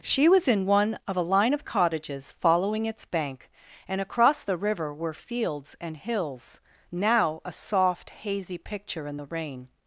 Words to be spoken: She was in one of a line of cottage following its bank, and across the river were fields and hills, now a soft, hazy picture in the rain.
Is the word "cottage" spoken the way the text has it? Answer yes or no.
no